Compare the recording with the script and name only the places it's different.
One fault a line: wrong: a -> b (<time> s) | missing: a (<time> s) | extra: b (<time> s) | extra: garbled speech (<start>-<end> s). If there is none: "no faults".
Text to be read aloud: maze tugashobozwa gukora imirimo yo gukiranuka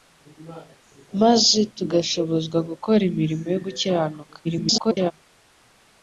extra: garbled speech (4.4-5.1 s)